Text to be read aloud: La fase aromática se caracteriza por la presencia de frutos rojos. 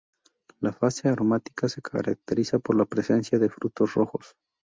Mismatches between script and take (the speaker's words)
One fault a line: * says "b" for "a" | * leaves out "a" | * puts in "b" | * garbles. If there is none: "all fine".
all fine